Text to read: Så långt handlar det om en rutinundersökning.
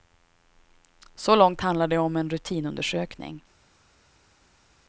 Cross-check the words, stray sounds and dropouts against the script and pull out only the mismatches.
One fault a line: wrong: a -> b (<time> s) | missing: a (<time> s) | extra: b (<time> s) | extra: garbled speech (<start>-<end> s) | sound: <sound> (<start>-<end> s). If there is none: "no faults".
no faults